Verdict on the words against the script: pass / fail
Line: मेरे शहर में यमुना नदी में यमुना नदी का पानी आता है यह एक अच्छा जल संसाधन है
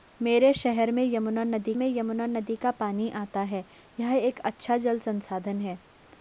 pass